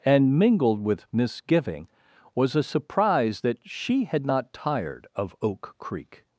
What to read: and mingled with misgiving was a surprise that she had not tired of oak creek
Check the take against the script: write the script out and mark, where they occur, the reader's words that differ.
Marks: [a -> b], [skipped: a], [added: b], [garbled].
and mingled with misgiving was a surprise that she had not tired of oak creek